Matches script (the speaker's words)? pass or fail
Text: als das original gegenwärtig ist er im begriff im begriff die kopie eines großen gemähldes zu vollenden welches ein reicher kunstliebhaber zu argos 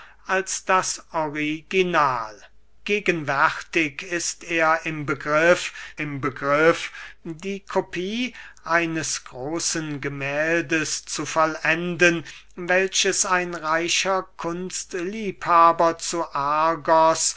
pass